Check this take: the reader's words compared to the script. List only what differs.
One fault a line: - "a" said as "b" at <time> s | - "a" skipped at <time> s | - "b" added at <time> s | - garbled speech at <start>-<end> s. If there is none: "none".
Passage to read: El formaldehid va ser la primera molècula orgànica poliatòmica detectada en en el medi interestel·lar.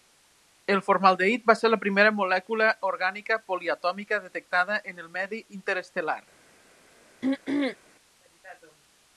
- "en" skipped at 5.0 s